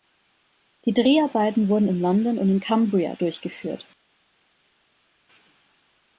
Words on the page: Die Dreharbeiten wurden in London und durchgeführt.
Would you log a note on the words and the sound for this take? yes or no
yes